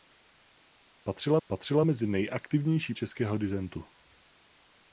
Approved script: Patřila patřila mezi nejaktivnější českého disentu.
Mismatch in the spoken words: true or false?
false